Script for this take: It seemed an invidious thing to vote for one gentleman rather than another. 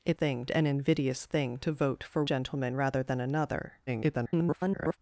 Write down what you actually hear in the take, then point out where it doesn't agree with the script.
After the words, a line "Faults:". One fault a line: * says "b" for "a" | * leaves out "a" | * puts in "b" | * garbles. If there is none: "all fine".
It thing an invidious thing to vote for gentleman rather than another. [garbled]
Faults:
* says "thing" for "seemed"
* leaves out "one"
* garbles